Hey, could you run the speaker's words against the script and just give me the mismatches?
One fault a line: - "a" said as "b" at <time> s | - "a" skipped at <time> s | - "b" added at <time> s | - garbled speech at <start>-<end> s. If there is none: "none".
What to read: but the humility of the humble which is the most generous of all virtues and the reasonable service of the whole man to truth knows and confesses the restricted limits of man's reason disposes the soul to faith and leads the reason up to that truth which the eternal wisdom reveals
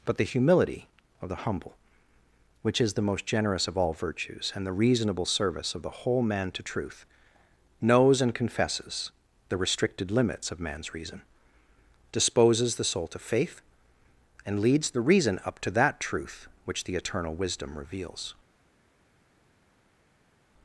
none